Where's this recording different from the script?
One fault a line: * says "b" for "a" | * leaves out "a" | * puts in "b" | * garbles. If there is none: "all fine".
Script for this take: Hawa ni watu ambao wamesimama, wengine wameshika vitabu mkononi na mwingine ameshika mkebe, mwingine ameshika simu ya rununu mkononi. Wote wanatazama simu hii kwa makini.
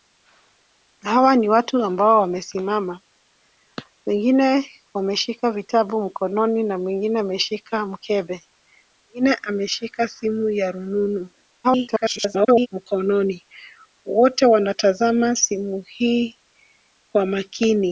* garbles